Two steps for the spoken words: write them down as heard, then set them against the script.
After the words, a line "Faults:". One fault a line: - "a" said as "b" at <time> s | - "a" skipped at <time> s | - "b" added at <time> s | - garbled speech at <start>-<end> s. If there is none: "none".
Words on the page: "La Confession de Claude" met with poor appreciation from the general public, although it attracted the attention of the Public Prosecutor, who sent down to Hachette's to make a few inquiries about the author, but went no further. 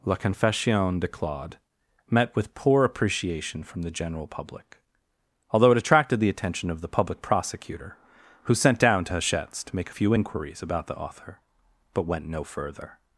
"La Confession de Claude" met with poor appreciation from the general public, although it attracted the attention of the Public Prosecutor, who sent down to Hachette's to make a few inquiries about the author, but went no further.
Faults:
none